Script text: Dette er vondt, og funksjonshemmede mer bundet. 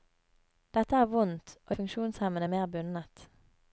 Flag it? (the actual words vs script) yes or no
no